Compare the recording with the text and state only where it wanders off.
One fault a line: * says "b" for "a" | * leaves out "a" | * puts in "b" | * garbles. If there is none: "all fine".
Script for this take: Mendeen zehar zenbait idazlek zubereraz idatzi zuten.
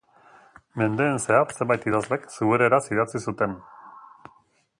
all fine